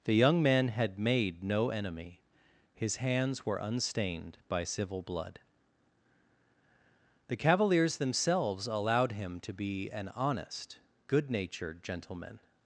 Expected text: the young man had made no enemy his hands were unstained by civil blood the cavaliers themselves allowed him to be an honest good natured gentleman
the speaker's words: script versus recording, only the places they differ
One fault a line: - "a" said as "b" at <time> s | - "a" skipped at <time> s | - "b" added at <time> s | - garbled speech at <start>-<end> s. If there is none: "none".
none